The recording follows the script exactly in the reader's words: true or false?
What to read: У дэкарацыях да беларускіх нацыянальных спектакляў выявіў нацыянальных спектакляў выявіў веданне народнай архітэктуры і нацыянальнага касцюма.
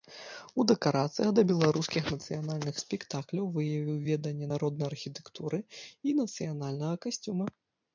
false